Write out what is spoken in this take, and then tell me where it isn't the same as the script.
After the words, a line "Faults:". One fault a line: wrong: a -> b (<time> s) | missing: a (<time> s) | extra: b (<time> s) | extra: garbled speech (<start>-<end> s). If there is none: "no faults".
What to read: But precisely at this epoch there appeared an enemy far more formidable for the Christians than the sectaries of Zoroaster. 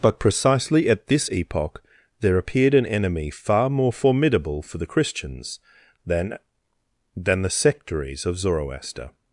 But precisely at this epoch there appeared an enemy far more formidable for the Christians than than the sectaries of Zoroaster.
Faults:
extra: than (7.1 s)